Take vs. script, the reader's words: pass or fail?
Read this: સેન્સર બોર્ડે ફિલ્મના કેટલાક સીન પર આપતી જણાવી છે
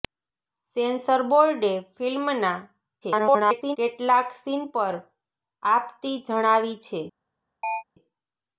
fail